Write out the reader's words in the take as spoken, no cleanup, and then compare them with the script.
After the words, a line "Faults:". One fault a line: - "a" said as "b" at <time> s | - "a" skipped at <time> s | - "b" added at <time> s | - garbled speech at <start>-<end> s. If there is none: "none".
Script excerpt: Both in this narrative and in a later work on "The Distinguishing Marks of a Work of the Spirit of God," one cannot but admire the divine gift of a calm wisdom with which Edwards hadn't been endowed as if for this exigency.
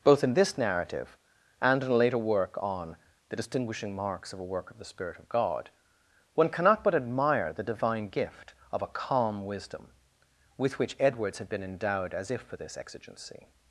Both in this narrative and in a later work on "The Distinguishing Marks of a Work of the Spirit of God," one cannot but admire the divine gift of a calm wisdom with which Edwards had been endowed as if for this exigency.
Faults:
- "hadn't" said as "had" at 11.4 s